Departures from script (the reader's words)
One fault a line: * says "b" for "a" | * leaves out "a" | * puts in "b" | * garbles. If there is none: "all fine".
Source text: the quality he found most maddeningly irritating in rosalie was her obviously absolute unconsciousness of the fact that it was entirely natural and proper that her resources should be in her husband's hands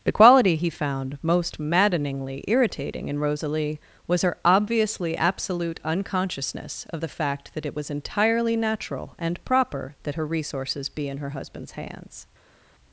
* leaves out "should"